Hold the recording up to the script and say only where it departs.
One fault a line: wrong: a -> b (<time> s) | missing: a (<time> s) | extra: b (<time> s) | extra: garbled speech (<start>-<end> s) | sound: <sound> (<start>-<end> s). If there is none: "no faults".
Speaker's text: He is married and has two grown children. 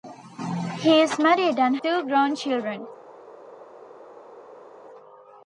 missing: has (1.8 s)